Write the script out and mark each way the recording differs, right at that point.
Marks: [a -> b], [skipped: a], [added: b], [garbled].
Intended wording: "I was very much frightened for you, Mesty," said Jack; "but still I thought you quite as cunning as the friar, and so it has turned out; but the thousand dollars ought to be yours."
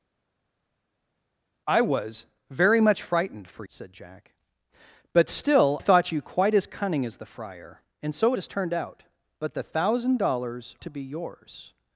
"I was very much frightened for [skipped: you, Mesty,"] said Jack; "but still [skipped: I] thought you quite as cunning as the friar, and so it has turned out; but the thousand dollars [skipped: ought] to be yours."